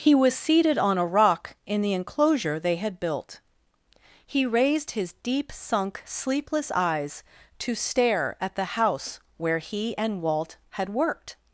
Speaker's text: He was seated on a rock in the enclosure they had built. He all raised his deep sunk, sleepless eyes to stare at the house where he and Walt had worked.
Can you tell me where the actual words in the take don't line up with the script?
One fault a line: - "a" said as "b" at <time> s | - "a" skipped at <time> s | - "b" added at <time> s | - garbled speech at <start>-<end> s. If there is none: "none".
- "all" skipped at 4.5 s